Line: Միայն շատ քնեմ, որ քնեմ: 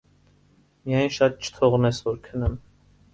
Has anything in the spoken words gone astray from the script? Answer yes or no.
yes